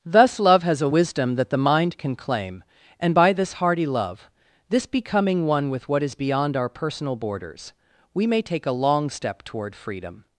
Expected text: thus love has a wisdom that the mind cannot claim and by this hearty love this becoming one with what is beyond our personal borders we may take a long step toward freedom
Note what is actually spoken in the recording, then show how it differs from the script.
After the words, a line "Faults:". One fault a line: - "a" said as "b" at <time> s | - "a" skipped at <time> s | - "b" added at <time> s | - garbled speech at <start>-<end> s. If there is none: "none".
thus love has a wisdom that the mind can claim and by this hearty love this becoming one with what is beyond our personal borders we may take a long step toward freedom
Faults:
- "cannot" said as "can" at 2.0 s